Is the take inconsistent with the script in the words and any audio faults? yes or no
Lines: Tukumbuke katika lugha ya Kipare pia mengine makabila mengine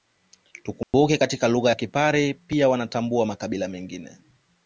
yes